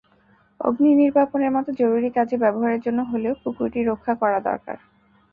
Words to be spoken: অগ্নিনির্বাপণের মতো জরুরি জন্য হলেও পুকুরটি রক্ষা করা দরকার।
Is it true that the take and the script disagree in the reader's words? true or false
true